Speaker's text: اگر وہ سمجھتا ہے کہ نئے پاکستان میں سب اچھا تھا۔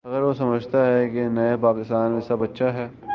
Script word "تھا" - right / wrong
wrong